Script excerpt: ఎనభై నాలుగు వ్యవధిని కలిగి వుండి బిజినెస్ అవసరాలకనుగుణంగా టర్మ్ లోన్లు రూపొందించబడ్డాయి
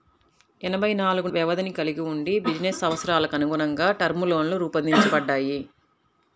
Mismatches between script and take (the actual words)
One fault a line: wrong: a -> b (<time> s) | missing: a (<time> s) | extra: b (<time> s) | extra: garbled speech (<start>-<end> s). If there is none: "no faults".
no faults